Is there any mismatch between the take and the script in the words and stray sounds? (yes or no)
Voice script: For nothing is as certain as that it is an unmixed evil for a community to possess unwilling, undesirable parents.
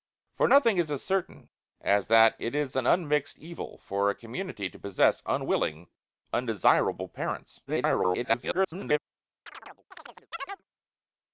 yes